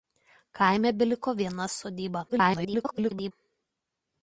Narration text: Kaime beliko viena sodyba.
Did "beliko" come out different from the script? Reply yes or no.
no